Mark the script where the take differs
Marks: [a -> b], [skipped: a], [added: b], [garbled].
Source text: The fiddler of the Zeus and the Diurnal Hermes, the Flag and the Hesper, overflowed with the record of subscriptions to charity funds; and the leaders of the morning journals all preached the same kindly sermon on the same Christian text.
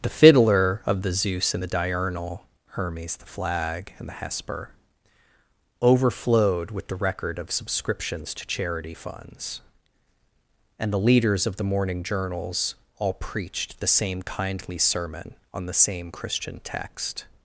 The fiddler of the Zeus and the Diurnal Hermes, the Flag and the Hesper, overflowed with the record of subscriptions to charity funds; and the leaders of the morning journals all preached the same kindly sermon on the same Christian text.